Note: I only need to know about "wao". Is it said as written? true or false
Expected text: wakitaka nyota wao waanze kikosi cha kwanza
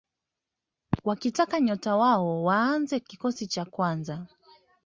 true